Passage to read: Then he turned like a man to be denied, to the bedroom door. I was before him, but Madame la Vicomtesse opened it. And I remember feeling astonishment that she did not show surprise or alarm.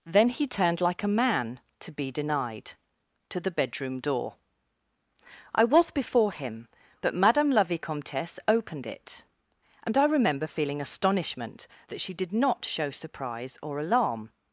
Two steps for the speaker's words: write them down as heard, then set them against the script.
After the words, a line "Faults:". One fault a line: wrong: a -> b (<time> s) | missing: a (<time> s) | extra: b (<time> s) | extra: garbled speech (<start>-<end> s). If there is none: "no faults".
Then he turned like a man to be denied, to the bedroom door. I was before him, but Madame la Vicomtesse opened it. And I remember feeling astonishment that she did not show surprise or alarm.
Faults:
no faults